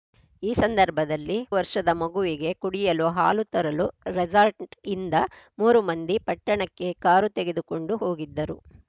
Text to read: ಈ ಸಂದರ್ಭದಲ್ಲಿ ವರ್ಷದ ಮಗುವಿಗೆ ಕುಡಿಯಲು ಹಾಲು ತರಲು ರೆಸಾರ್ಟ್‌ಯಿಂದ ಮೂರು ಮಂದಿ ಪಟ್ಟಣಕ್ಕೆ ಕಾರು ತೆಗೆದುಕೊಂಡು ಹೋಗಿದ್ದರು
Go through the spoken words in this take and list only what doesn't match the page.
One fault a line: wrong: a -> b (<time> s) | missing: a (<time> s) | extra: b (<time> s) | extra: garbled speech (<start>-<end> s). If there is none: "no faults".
no faults